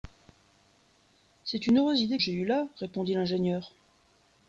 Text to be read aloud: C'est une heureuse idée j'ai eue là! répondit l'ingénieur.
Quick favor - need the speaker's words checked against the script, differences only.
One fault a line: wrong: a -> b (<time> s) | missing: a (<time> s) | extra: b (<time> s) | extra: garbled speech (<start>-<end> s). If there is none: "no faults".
no faults